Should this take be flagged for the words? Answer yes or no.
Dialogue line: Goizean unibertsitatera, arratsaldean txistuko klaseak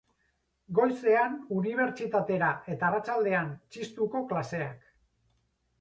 yes